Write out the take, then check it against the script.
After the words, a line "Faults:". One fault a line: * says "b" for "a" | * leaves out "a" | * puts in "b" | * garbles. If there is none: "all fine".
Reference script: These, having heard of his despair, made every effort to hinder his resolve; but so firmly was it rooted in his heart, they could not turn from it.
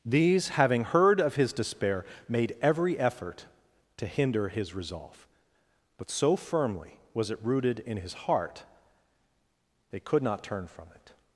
These, having heard of his despair, made every effort to hinder his resolve; but so firmly was it rooted in his heart, they could not turn from it.
Faults:
all fine